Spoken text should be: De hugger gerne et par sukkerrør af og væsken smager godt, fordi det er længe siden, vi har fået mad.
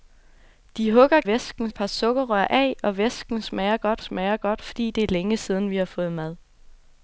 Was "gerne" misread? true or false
true